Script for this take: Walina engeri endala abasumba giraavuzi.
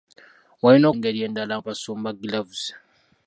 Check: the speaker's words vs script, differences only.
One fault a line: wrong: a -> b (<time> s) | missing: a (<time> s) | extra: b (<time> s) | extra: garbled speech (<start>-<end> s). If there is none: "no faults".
no faults